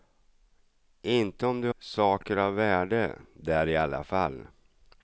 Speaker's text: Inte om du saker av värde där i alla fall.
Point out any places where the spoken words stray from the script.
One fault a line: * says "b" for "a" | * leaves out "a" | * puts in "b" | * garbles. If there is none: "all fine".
all fine